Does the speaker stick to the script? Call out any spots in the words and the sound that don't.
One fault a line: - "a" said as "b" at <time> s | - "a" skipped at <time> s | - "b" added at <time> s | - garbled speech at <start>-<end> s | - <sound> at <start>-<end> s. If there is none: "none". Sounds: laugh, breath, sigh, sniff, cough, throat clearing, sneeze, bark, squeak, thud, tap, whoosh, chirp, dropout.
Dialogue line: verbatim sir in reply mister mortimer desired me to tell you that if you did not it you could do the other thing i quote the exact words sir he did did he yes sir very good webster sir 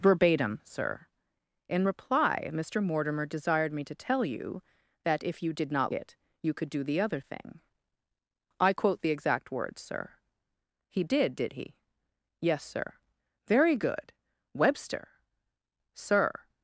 none